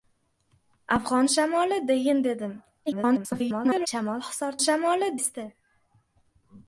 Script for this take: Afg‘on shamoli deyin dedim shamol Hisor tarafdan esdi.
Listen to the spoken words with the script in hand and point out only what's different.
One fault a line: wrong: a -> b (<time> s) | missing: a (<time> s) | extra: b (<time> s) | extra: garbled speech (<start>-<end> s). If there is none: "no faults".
extra: garbled speech (2.9-3.9 s)
wrong: tarafdan -> shamoli (4.6 s)